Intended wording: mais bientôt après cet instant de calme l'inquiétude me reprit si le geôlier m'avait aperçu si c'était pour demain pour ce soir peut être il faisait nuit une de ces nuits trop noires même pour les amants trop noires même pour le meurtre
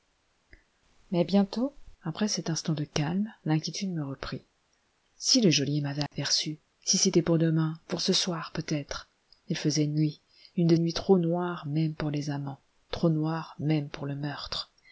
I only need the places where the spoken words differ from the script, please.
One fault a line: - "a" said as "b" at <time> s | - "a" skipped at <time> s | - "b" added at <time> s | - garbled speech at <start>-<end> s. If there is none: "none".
- "ces" skipped at 10.8 s